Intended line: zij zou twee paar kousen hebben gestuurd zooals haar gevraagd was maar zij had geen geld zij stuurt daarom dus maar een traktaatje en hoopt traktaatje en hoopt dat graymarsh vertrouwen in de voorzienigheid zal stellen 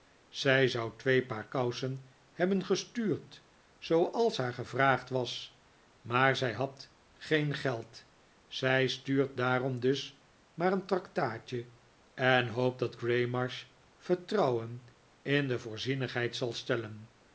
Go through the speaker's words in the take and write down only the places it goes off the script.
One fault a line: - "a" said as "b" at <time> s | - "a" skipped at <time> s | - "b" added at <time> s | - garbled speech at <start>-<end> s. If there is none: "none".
- "traktaatje en hoopt" skipped at 12.8 s